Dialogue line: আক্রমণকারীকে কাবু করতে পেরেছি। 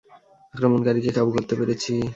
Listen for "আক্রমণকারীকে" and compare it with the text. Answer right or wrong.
right